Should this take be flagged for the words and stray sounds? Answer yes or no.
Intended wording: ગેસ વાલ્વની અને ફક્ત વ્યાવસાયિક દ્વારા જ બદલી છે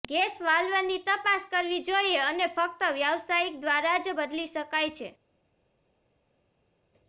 yes